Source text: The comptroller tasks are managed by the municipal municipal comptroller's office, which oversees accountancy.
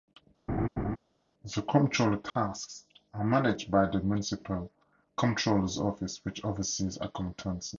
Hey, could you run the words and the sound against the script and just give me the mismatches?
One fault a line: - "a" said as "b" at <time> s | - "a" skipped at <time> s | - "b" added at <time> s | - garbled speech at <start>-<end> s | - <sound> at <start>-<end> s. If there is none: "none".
- laugh at 0.5-1.0 s
- dropout at 2.3-2.4 s
- "municipal" skipped at 4.7 s